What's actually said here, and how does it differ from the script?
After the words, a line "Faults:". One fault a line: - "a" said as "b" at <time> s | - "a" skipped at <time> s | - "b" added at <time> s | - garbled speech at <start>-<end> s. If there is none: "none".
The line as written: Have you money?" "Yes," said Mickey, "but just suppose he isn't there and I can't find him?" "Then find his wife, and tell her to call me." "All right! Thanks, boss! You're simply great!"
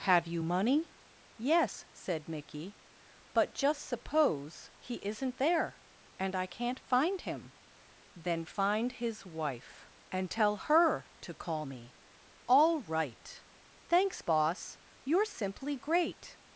Have you money?" "Yes," said Mickey, "but just suppose he isn't there and I can't find him?" "Then find his wife, and tell her to call me." "All right! Thanks, boss! You're simply great!"
Faults:
none